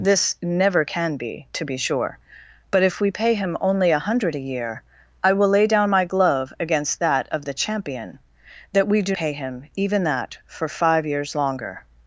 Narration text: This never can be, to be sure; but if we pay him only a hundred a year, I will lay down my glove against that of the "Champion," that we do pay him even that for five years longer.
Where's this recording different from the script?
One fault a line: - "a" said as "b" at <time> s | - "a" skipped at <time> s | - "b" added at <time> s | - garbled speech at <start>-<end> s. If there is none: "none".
none